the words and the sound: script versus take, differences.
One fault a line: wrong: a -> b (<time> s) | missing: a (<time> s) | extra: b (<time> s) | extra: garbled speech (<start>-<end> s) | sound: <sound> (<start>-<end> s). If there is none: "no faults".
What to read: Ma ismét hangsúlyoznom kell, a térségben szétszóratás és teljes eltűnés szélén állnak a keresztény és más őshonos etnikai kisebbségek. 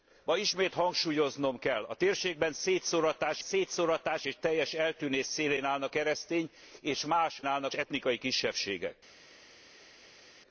extra: szétszóratás (3.4 s)
missing: a (5.9 s)
wrong: őshonos -> állnak (7.5 s)